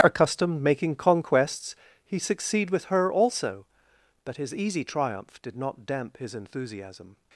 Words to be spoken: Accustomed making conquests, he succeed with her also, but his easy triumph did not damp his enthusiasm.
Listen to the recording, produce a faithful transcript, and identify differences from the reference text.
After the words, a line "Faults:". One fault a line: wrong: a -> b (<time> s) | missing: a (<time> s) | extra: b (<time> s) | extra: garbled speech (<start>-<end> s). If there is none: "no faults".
Accustomed making conquests, he succeed with her also, but his easy triumph did not damp his enthusiasm.
Faults:
no faults